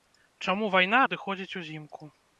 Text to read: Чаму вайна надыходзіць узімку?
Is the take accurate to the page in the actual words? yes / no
yes